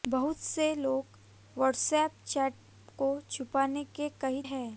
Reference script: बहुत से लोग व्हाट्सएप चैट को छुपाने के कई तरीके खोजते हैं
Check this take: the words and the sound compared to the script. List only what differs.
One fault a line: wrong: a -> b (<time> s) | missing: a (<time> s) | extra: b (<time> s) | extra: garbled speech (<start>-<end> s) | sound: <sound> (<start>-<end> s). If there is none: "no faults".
missing: तरीके खोजते (4.4 s)